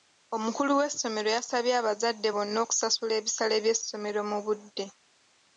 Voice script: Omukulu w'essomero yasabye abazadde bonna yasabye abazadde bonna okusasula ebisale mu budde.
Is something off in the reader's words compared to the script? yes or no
yes